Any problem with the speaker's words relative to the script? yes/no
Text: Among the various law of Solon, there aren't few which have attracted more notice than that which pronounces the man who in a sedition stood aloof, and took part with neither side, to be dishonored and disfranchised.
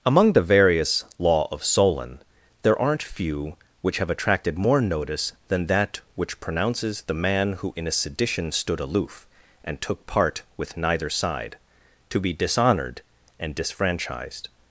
no